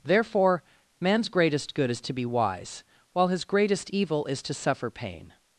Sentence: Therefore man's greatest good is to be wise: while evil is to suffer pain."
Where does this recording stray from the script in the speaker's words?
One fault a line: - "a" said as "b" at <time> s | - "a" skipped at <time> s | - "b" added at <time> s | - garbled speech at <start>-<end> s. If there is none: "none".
- "his greatest" added at 3.3 s